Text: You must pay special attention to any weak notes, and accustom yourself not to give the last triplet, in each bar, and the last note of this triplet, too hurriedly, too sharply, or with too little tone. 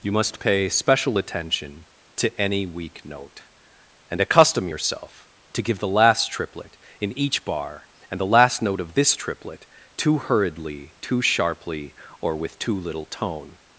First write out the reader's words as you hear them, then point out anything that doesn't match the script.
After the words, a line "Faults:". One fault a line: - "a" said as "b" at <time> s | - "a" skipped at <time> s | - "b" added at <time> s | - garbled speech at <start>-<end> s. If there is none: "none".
You must pay special attention to any weak note, and accustom yourself to give the last triplet, in each bar, and the last note of this triplet, too hurriedly, too sharply, or with too little tone.
Faults:
- "notes" said as "note" at 3.0 s
- "not" skipped at 5.3 s